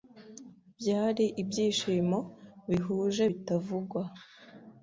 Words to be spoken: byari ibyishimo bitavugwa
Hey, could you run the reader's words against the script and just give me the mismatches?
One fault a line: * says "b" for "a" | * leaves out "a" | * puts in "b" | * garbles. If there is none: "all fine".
* puts in "bihuje"